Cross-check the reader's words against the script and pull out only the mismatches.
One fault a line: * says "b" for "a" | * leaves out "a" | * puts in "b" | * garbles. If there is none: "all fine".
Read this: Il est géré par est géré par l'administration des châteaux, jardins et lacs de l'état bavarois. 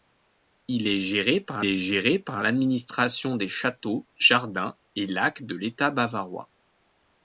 all fine